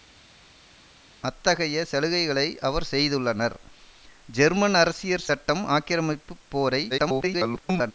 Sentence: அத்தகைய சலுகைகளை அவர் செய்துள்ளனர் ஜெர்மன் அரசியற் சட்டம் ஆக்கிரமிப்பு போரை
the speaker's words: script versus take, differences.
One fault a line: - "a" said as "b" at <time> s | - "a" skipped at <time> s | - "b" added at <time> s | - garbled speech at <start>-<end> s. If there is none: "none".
- garbled speech at 6.9-7.9 s